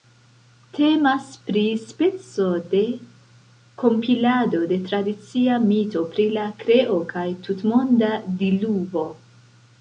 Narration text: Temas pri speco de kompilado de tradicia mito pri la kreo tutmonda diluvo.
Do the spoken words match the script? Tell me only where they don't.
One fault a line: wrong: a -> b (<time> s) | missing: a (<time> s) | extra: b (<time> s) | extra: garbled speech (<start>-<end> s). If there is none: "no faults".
extra: kaj (7.1 s)